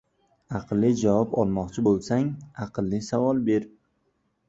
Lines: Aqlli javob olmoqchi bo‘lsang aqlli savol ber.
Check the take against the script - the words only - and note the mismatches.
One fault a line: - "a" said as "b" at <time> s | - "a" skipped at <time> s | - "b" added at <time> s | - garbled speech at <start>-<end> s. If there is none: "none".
none